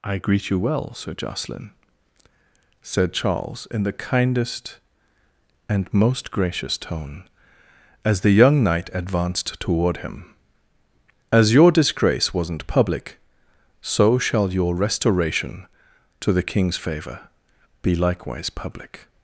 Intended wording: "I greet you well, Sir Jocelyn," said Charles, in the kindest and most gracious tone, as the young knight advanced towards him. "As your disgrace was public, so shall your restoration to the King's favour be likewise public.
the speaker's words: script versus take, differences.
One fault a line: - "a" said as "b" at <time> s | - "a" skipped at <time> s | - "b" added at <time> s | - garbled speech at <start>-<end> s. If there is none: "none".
- "towards" said as "toward" at 9.6 s
- "was" said as "wasn't" at 12.3 s